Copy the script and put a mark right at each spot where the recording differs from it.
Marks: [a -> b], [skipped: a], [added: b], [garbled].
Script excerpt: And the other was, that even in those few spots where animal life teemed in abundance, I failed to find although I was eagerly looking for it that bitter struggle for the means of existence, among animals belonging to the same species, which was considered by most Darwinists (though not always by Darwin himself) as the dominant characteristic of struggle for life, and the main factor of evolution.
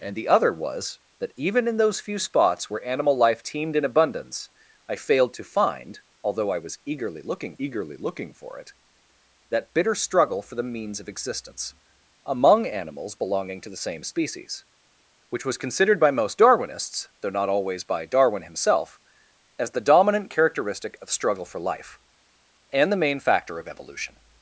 And the other was, that even in those few spots where animal life teemed in abundance, I failed to find although I was eagerly looking [added: eagerly looking] for it that bitter struggle for the means of existence, among animals belonging to the same species, which was considered by most Darwinists (though not always by Darwin himself) as the dominant characteristic of struggle for life, and the main factor of evolution.